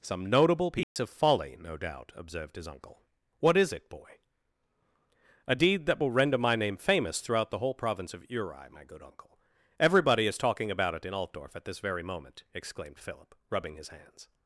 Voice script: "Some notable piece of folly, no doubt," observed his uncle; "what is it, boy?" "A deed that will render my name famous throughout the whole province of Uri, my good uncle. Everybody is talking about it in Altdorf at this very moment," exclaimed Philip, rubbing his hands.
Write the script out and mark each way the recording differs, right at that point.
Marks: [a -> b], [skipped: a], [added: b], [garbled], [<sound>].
"Some notable piece [dropout] of folly, no doubt," observed his uncle; "what is it, boy?" "A deed that will render my name famous throughout the whole province of Uri, my good uncle. Everybody is talking about it in Altdorf at this very moment," exclaimed Philip, rubbing his hands.